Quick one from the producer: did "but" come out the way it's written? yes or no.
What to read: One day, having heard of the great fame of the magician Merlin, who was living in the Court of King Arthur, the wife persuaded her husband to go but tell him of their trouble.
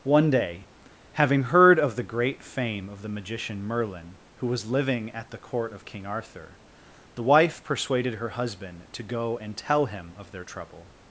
no